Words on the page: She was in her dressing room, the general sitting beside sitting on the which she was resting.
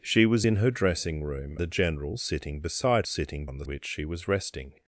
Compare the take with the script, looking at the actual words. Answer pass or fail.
pass